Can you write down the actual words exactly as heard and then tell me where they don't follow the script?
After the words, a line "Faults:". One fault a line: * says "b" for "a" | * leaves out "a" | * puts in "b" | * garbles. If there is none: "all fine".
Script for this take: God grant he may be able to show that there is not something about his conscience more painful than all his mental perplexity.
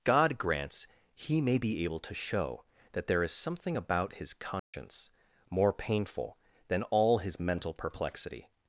God grants he may be able to show that there is something about his conscience more painful than all his mental perplexity.
Faults:
* says "grants" for "grant"
* leaves out "not"